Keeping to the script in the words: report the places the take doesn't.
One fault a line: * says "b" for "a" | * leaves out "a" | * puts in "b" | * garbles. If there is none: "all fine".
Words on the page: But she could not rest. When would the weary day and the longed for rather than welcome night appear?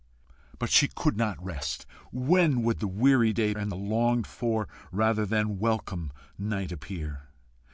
all fine